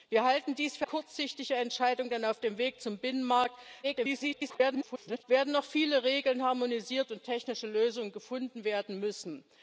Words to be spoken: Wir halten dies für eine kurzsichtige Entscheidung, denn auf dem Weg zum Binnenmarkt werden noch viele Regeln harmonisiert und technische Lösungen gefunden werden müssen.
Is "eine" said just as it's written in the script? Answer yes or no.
no